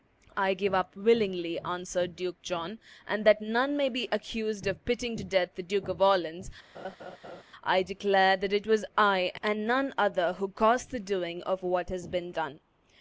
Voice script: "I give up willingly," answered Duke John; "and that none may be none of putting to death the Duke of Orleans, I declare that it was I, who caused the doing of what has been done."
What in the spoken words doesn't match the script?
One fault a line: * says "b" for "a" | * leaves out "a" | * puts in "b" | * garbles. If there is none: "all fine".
* says "accused" for "none"
* puts in "and none other"